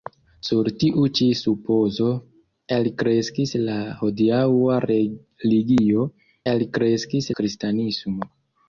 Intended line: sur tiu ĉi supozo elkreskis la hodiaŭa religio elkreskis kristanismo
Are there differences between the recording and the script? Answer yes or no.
no